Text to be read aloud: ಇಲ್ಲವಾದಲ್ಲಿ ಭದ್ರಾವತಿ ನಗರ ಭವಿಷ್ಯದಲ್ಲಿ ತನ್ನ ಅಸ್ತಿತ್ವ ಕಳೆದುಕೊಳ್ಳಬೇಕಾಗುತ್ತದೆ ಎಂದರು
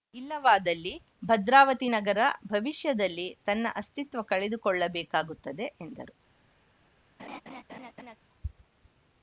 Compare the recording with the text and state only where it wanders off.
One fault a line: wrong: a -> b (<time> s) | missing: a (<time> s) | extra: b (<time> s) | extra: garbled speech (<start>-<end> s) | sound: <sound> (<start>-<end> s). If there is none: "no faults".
sound: laugh (7.2-8.2 s)